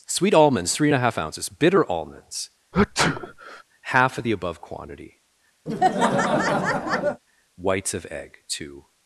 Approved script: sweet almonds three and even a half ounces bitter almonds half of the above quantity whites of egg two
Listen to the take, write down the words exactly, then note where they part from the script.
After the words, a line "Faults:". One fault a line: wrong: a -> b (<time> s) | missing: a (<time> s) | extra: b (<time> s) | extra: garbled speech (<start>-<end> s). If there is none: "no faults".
sweet almonds three and a half ounces bitter almonds half of the above quantity whites of egg two
Faults:
missing: even (0.9 s)